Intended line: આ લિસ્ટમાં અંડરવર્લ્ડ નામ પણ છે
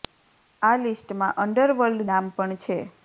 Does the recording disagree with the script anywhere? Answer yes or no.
no